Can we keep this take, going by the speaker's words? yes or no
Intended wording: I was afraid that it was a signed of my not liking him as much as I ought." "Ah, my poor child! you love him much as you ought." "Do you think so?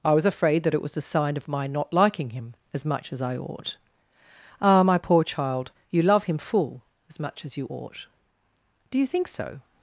no